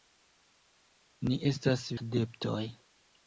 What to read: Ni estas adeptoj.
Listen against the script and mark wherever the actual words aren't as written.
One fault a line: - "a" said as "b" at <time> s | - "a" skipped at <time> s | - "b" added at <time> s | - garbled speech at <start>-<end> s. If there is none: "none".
none